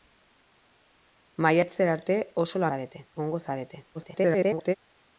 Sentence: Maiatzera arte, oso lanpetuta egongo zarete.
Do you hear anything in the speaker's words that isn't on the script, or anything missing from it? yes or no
yes